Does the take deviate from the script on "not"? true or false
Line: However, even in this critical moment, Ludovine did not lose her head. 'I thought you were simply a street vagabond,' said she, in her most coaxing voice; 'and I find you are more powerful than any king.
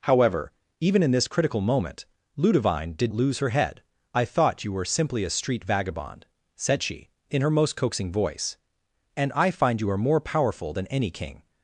true